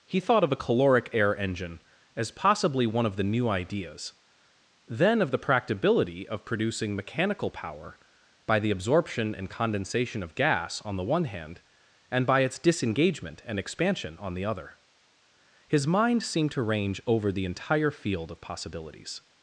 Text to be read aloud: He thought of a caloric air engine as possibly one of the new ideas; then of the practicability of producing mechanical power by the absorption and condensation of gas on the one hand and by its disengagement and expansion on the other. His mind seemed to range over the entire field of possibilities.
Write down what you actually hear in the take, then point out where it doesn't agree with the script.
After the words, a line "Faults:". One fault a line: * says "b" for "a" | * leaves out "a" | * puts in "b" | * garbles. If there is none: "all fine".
He thought of a caloric air engine as possibly one of the new ideas; then of the practicability of producing mechanical power by the absorption and condensation of gas on the one hand and by its disengagement and expansion on the other. His mind seemed to range over the entire field of possibilities.
Faults:
all fine